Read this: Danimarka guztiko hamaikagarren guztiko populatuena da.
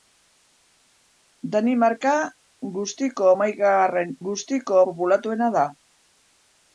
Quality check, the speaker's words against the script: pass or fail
pass